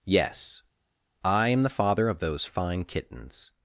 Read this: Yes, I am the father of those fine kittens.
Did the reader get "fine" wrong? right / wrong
right